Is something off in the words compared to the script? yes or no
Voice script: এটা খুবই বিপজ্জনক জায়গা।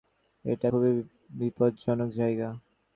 no